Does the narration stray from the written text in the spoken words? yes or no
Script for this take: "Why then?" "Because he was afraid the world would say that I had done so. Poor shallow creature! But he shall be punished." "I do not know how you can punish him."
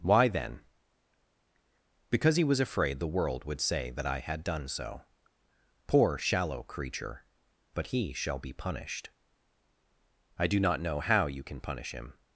no